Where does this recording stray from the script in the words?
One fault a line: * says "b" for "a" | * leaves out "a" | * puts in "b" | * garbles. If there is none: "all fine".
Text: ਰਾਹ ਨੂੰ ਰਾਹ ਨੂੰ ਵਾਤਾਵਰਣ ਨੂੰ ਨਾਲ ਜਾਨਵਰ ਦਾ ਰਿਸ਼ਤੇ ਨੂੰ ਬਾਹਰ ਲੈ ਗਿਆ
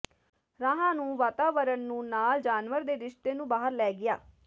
* leaves out "ਰਾਹ ਨੂੰ"
* says "ਦੇ" for "ਦਾ"